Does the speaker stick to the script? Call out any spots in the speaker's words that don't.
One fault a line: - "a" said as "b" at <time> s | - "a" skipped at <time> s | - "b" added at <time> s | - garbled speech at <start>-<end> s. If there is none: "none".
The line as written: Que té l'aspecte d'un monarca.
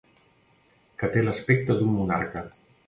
none